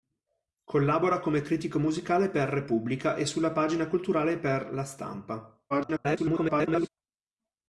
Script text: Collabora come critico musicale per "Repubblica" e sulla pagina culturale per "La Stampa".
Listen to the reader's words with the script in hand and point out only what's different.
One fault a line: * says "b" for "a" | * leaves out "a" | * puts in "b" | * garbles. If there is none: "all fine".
* garbles